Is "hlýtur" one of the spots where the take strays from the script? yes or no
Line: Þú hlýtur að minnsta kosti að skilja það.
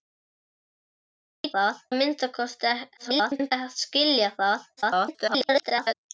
yes